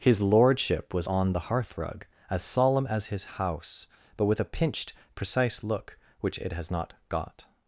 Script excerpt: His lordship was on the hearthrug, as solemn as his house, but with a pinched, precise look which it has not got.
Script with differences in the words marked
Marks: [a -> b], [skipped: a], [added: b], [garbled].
His lordship was on the hearthrug, as solemn as his house, but with a pinched, precise look which it has not got.